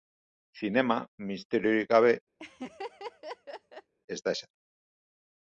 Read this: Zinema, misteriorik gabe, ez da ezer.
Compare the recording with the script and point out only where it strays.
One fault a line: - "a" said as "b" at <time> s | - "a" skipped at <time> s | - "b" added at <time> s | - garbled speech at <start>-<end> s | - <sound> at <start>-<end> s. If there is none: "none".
- laugh at 2.4-3.9 s